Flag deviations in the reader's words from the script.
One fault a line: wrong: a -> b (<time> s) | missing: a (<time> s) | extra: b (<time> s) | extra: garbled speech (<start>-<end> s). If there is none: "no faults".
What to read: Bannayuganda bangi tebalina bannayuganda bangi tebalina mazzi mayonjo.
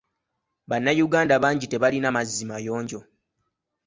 missing: bannayuganda bangi tebalina (2.1 s)